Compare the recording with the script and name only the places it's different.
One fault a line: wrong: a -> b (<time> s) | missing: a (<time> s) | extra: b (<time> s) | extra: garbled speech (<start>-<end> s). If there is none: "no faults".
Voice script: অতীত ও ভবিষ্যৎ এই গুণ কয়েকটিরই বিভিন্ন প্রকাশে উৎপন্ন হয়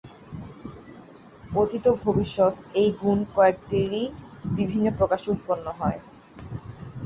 no faults